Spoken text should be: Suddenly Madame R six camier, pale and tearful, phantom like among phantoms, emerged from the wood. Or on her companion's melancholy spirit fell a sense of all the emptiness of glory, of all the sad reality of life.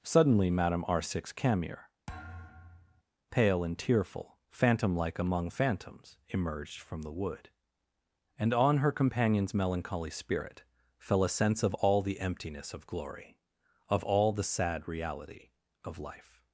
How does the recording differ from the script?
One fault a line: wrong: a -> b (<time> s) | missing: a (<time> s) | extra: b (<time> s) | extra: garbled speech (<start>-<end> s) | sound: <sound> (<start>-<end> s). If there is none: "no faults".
sound: thud (2.1-3.0 s)
wrong: Or -> And (8.4 s)